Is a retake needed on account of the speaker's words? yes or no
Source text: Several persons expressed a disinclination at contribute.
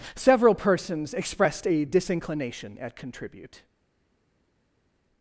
no